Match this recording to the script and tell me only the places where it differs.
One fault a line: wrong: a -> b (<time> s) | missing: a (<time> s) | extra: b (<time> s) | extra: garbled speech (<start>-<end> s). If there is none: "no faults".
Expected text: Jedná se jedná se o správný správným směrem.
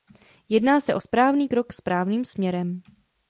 missing: jedná se (0.9 s)
extra: krok (1.5 s)